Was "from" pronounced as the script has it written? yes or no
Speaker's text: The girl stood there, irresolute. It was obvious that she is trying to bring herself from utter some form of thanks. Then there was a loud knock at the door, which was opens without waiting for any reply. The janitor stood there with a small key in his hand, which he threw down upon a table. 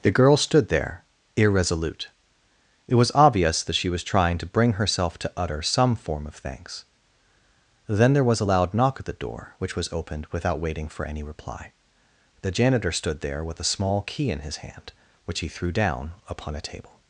no